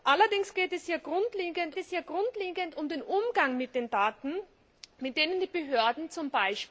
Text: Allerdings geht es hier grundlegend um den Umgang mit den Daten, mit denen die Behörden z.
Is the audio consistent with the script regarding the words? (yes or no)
no